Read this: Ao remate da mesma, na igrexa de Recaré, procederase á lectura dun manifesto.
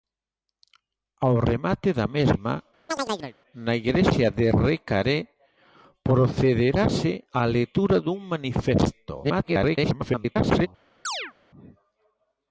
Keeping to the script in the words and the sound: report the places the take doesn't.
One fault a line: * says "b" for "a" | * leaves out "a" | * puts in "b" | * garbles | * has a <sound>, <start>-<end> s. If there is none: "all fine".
* has a chirp, 2.9-3.4 s
* garbles
* has a chirp, 11.0-11.3 s